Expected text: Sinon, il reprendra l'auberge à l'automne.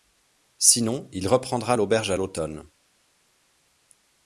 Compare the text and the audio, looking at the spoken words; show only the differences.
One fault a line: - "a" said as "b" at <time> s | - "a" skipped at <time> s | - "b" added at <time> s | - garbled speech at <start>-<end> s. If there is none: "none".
none